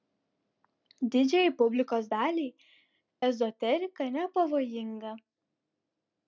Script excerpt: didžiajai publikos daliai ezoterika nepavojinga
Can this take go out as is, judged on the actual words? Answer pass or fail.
pass